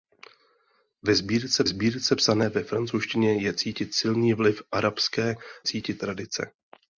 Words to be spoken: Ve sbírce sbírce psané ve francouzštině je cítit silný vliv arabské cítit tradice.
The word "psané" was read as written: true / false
true